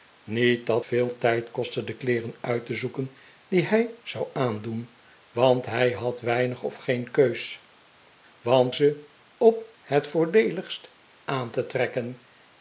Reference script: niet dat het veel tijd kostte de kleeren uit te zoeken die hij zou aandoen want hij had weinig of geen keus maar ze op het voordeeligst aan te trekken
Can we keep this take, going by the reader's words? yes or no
no